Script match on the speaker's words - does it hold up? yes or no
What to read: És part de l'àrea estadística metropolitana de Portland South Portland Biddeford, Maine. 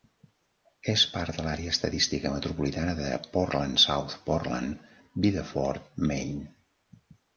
yes